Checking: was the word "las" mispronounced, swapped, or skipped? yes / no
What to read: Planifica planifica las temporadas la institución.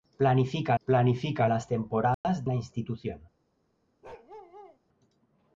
no